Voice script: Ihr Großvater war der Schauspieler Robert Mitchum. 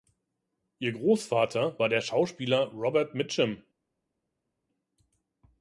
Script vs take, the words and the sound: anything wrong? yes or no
no